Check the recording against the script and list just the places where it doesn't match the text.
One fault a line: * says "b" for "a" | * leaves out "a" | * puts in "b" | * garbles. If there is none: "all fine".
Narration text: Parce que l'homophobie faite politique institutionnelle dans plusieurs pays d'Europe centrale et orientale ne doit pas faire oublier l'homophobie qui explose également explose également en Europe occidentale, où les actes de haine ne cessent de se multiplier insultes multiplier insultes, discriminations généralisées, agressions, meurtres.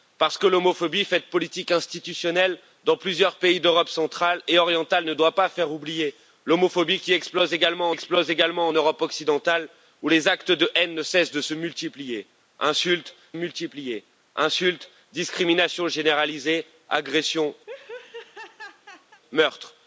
all fine